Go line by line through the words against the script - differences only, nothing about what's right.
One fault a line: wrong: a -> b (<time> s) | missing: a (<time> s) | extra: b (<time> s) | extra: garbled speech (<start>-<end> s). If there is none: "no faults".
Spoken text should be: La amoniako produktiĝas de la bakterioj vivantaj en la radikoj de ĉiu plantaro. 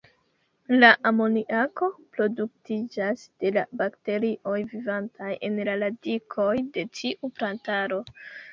wrong: ĉiu -> tiu (7.0 s)